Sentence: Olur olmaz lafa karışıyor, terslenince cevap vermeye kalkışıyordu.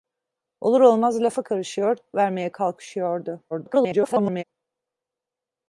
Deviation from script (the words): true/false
true